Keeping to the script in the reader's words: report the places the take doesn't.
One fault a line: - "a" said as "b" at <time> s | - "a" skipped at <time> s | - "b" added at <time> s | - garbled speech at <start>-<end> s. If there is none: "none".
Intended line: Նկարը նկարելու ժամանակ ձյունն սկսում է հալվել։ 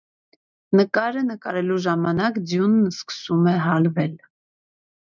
none